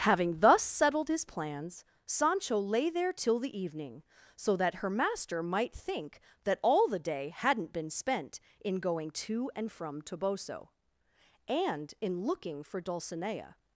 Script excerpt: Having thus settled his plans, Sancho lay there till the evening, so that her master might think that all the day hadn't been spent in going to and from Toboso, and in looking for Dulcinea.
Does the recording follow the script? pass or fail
pass